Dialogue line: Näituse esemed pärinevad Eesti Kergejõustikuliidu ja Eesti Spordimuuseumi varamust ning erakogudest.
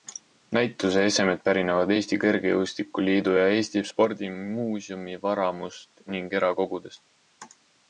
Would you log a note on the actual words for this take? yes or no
no